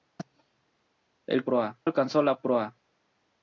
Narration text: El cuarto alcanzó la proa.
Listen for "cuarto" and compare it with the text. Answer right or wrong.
wrong